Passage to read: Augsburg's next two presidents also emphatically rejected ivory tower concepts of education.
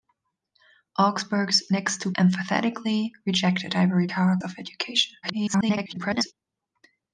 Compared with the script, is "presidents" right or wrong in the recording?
wrong